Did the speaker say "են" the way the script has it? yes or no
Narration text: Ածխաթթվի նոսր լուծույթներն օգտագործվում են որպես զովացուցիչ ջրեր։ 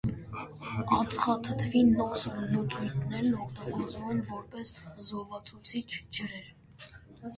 yes